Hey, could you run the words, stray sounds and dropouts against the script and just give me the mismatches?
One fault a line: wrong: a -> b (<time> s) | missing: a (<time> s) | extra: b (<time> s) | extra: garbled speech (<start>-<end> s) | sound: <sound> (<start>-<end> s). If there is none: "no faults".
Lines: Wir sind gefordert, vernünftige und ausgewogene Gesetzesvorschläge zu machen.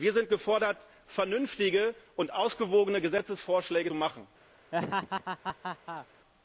missing: zu (3.9 s)
sound: laugh (4.7-6.1 s)